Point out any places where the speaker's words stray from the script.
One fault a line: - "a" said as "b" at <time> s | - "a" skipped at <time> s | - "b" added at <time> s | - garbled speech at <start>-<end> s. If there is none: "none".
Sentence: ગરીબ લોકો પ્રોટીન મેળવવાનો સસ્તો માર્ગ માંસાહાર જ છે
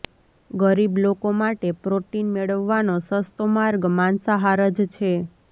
- "માટે" added at 1.4 s